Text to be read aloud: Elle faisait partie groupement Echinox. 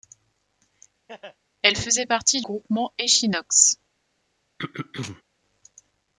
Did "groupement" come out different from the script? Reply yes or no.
no